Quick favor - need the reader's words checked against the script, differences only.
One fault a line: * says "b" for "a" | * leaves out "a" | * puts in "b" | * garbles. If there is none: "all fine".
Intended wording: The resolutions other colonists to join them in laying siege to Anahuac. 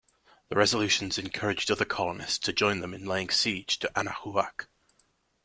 * puts in "encouraged"